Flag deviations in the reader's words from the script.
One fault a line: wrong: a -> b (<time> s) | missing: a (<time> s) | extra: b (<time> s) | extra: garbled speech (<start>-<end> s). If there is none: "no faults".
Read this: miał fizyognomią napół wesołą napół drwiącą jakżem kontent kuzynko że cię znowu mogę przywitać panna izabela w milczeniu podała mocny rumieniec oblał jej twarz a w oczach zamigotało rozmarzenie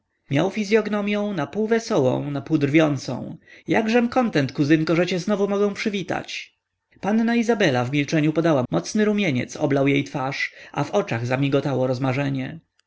no faults